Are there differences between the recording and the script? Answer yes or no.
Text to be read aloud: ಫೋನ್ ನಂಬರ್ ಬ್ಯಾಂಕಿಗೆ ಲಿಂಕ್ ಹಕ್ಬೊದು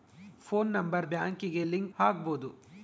no